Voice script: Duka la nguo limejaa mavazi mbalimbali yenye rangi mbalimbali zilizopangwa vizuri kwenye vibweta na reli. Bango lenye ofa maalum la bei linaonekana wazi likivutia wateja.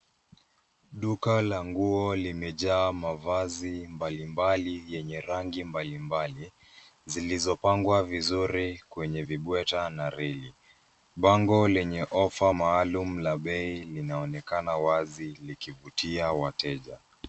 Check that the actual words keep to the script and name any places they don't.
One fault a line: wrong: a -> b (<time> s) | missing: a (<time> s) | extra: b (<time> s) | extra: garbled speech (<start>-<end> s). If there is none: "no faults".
no faults